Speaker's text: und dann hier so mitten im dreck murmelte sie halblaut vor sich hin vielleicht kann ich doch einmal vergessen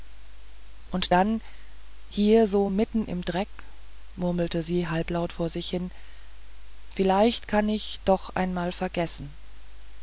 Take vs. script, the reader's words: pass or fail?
pass